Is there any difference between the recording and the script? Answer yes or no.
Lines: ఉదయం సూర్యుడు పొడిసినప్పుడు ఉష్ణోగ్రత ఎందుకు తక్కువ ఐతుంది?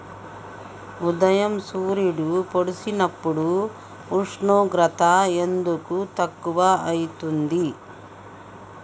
no